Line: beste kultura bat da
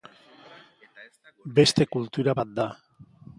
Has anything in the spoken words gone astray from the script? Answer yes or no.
no